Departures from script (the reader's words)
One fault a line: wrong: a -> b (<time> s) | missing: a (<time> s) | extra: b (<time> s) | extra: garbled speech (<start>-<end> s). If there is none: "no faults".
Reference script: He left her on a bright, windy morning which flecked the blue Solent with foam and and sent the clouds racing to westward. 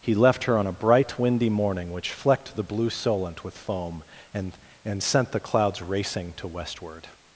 no faults